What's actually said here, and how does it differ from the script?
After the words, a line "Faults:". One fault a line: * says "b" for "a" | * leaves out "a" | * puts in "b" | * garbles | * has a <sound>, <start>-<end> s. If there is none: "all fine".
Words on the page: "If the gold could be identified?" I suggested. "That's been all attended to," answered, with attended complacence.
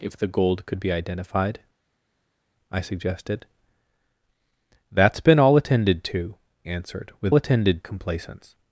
"If the gold could be identified?" I suggested. "That's been all attended to," answered, with attended complacence.
Faults:
all fine